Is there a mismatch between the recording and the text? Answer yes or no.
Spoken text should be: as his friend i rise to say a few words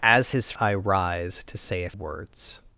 yes